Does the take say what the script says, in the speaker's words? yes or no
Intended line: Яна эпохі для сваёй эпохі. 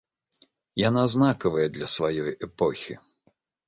no